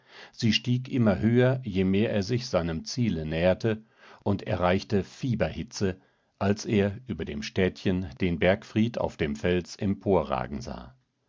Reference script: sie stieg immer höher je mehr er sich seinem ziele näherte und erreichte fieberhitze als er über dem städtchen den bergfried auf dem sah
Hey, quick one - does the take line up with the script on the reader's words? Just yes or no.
no